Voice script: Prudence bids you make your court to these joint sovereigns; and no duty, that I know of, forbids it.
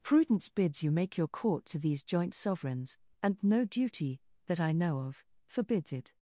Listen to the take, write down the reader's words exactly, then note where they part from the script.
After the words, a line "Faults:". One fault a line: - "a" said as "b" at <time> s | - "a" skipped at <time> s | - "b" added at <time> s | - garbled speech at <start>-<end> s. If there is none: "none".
Prudence bids you make your court to these joint sovereigns; and no duty, that I know of, forbids it.
Faults:
none